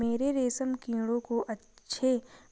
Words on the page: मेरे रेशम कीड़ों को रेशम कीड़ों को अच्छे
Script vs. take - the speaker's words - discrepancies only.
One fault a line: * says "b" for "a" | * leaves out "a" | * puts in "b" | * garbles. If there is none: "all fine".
* leaves out "रेशम कीड़ों को"